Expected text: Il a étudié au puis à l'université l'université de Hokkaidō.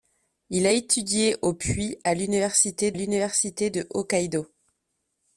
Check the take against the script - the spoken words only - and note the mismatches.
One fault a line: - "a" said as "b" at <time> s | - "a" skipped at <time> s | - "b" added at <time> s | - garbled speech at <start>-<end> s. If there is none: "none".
none